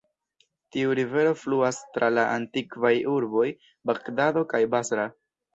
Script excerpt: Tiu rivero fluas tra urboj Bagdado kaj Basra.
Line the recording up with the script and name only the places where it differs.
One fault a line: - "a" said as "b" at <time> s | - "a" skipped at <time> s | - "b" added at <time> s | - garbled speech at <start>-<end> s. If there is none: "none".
- "la antikvaj" added at 2.1 s